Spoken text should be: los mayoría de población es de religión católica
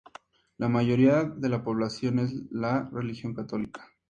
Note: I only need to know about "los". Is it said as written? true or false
false